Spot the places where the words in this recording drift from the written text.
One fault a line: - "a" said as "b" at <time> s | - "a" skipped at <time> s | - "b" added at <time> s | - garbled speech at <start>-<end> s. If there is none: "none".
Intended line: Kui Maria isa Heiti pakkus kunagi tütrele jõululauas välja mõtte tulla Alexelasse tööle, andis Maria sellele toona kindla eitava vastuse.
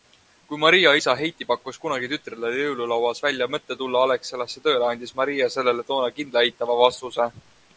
none